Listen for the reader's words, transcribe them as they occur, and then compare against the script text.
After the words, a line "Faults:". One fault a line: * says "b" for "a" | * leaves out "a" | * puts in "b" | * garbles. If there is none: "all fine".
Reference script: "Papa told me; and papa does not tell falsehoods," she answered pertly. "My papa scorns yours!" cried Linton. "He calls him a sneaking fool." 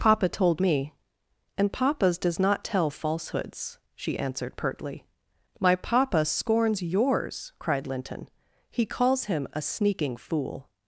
"Papa told me; and papas does not tell falsehoods," she answered pertly. "My papa scorns yours!" cried Linton. "He calls him a sneaking fool."
Faults:
* says "papas" for "papa"